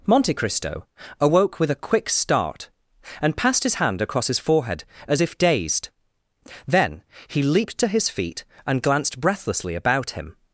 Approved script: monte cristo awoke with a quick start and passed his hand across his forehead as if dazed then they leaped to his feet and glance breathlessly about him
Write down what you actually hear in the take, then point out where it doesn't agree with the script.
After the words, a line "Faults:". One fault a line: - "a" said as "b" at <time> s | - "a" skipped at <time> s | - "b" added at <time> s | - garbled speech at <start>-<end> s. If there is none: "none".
monte cristo awoke with a quick start and passed his hand across his forehead as if dazed then he leaped to his feet and glanced breathlessly about him
Faults:
- "they" said as "he" at 7.3 s
- "glance" said as "glanced" at 8.8 s